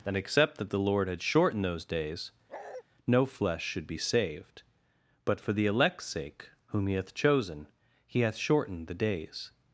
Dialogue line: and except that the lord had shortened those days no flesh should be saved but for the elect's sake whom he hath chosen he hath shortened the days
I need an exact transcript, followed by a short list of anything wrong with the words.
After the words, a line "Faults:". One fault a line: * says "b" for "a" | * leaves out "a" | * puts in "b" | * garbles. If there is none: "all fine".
and except that the lord had shortened those days no flesh should be saved but for the elect's sake whom he hath chosen he hath shortened the days
Faults:
all fine